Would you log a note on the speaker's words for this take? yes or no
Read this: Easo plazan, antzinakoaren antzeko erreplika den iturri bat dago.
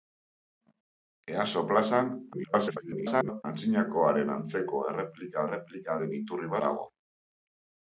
yes